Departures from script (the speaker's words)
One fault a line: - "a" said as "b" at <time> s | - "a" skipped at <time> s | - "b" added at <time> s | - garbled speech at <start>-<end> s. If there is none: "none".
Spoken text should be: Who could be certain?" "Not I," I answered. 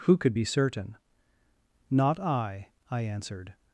none